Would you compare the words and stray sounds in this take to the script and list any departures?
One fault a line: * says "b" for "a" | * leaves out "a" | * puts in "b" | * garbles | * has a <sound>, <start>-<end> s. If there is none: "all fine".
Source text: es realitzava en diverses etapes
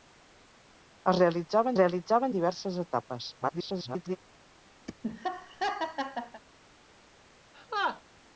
* puts in "realitzava"
* garbles
* has a laugh, 4.9-6.4 s
* has a laugh, 7.5-8.0 s